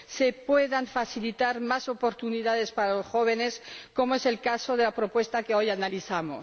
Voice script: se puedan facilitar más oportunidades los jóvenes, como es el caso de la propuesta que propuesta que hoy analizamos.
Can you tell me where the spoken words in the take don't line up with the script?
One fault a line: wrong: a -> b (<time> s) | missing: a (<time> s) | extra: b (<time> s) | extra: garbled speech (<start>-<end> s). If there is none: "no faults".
extra: para (2.7 s)
missing: propuesta que (5.5 s)